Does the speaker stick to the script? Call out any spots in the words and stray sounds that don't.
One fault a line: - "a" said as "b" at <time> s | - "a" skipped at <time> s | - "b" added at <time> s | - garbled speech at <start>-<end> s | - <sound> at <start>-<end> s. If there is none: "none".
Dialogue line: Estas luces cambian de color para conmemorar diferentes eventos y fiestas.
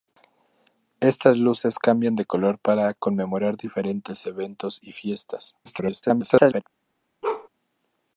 - garbled speech at 5.6-6.6 s
- bark at 7.2-7.5 s